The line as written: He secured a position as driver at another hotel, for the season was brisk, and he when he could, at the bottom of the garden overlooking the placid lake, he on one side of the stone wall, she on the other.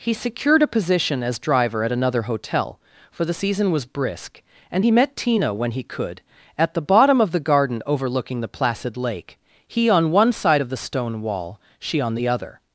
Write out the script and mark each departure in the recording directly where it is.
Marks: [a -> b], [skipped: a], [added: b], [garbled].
He secured a position as driver at another hotel, for the season was brisk, and he [added: met Tina] when he could, at the bottom of the garden overlooking the placid lake, he on one side of the stone wall, she on the other.